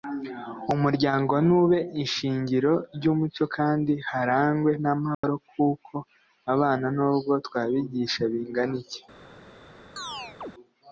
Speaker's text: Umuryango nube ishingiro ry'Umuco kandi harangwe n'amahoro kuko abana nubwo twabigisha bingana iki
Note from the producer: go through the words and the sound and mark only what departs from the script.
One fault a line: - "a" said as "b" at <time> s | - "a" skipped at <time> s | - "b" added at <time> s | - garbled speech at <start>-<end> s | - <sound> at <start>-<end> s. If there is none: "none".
- dropout at 5.1-5.2 s
- chirp at 10.0-10.5 s